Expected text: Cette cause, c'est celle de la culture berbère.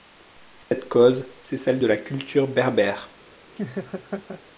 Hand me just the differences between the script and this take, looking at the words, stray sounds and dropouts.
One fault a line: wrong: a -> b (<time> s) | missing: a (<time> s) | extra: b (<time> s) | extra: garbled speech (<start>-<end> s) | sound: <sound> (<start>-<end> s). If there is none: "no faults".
sound: dropout (0.6-0.7 s)
sound: laugh (3.6-4.4 s)